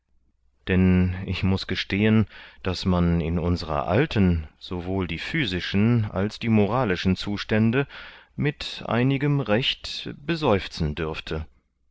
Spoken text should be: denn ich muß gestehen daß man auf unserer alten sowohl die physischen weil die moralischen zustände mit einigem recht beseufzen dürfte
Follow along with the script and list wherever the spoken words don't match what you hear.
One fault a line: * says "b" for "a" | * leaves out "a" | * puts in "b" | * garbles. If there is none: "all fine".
* says "in" for "auf"
* says "als" for "weil"